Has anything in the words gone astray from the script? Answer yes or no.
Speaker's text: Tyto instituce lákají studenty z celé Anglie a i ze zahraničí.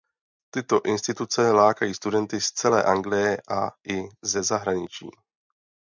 no